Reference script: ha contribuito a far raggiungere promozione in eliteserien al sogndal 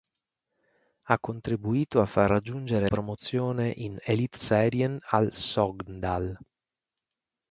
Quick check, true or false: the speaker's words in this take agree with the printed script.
true